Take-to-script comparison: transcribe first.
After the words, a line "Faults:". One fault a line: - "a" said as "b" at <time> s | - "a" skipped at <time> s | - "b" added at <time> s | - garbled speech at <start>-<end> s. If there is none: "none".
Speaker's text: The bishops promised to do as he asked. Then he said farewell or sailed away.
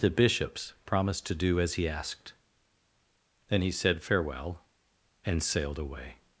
The bishops promised to do as he asked. Then he said farewell and sailed away.
Faults:
- "or" said as "and" at 5.2 s